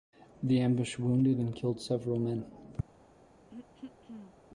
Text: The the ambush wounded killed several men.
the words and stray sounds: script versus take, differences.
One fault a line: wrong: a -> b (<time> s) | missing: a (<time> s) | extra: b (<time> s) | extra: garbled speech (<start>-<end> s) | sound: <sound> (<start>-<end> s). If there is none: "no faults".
missing: the (0.6 s)
extra: and (1.4 s)
sound: throat clearing (3.5-4.3 s)